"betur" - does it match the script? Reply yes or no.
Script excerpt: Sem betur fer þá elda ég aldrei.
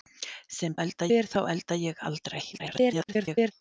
no